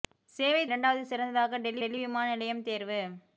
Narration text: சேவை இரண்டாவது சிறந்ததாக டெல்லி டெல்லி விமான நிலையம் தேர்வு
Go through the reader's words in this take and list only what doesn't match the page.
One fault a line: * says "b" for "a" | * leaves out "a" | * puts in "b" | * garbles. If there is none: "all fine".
all fine